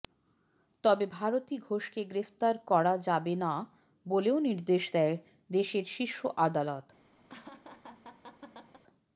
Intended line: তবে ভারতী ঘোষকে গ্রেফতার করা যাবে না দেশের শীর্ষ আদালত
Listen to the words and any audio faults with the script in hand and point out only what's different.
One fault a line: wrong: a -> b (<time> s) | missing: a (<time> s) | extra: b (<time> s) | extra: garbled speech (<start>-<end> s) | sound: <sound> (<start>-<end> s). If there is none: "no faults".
extra: বলেও নির্দেশ দেয় (4.0 s)
sound: laugh (7.3-8.8 s)